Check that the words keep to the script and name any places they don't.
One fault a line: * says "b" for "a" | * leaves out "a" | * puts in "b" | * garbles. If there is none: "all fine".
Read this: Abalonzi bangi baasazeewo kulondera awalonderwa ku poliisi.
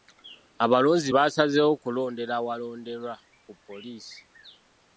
* leaves out "bangi"